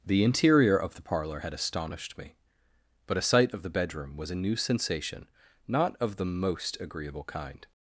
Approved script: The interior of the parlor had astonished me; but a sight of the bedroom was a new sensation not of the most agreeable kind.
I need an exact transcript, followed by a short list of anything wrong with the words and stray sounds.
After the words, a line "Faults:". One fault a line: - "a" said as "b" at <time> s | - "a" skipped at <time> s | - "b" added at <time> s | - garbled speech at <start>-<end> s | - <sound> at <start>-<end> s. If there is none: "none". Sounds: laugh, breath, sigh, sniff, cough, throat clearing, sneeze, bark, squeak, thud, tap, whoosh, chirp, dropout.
The interior of the parlor had astonished me; but a sight of the bedroom was a new sensation not of the most agreeable kind.
Faults:
none